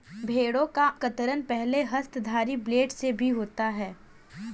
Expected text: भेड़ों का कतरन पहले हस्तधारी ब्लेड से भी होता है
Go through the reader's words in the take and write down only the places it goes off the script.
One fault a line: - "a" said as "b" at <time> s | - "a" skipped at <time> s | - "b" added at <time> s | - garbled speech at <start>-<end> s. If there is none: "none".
none